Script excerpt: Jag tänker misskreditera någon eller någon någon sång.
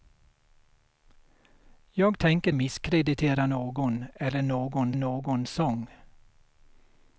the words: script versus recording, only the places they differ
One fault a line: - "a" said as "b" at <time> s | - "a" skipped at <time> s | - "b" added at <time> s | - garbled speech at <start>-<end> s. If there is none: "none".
none